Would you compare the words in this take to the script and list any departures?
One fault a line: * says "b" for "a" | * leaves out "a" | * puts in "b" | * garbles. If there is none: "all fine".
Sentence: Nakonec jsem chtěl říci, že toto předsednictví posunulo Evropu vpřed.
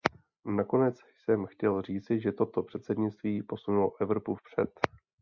all fine